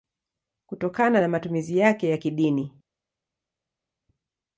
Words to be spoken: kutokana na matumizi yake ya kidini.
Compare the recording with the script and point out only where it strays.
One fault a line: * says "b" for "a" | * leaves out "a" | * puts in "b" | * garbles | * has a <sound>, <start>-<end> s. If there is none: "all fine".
all fine